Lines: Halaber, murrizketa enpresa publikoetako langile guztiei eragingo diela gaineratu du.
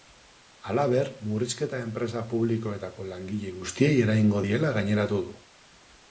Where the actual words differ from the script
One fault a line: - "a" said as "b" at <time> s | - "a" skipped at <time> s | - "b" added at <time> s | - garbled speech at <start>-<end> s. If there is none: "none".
none